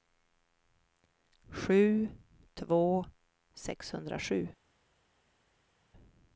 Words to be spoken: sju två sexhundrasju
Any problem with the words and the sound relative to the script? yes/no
no